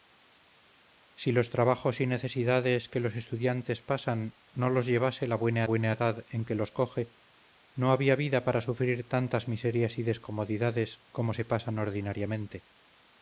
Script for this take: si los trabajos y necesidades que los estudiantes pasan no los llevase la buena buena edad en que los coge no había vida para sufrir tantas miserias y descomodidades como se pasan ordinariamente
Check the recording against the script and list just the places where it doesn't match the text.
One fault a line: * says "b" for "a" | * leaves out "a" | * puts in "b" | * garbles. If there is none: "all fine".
all fine